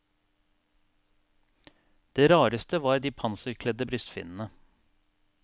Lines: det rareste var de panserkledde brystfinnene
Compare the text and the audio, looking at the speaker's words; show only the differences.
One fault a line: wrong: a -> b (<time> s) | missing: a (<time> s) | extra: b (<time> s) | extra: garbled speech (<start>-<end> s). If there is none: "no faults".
no faults